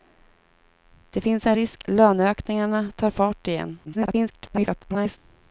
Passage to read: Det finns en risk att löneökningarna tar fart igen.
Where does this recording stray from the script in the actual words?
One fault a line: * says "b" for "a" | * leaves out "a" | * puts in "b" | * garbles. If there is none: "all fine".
* leaves out "att"
* garbles